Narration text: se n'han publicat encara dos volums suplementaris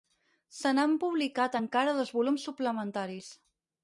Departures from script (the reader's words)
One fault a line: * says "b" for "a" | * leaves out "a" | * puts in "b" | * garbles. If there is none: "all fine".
all fine